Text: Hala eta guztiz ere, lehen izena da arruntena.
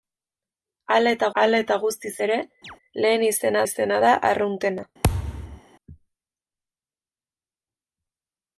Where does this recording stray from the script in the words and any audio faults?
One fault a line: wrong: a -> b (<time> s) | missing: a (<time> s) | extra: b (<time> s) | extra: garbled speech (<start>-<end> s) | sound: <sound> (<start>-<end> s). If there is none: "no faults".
extra: hala eta (1.4 s)
sound: chirp (2.6-2.8 s)
extra: izena (3.6 s)
sound: thud (5.0-5.6 s)